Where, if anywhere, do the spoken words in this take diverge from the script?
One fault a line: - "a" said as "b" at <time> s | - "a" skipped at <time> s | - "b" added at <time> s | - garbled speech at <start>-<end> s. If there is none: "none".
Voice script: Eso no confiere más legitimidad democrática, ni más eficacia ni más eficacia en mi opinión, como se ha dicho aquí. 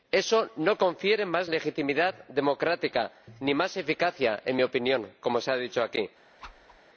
- "ni más eficacia" skipped at 4.4 s